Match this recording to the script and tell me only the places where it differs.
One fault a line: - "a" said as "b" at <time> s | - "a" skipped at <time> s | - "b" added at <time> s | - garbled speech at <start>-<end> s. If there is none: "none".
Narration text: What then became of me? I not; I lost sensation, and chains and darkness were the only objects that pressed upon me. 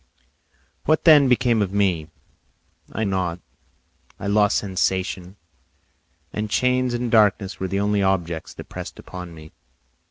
none